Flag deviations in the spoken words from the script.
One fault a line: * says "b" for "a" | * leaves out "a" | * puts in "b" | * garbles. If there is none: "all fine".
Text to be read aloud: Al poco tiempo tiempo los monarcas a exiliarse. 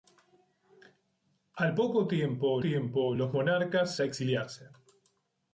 all fine